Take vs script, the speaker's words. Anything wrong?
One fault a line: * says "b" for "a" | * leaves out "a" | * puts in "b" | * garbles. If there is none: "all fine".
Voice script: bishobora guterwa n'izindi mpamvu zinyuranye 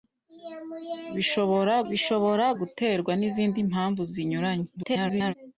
* puts in "bishobora"
* garbles